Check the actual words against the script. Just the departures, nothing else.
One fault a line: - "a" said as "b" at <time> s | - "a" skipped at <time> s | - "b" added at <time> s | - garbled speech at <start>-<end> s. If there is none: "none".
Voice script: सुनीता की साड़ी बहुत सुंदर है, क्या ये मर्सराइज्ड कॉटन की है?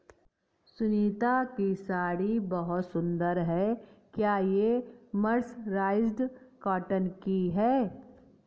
none